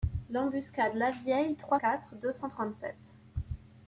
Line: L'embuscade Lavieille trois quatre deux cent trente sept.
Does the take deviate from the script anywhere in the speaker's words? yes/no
no